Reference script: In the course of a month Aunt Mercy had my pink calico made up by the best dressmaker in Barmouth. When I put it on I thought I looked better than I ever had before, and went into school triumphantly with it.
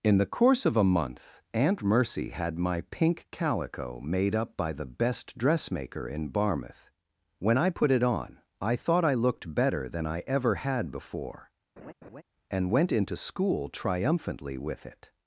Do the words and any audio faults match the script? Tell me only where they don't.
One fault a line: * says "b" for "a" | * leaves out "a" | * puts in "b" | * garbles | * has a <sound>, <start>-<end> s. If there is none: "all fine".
* has a laugh, 11.8-12.2 s